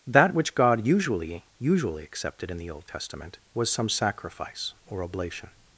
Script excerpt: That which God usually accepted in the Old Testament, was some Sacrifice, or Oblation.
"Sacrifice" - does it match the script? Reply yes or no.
yes